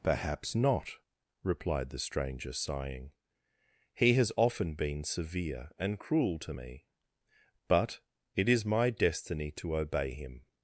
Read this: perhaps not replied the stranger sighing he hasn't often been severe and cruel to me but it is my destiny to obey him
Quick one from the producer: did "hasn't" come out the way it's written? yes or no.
no